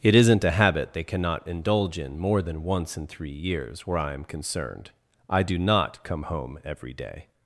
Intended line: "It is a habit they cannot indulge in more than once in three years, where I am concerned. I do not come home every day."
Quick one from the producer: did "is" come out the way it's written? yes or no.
no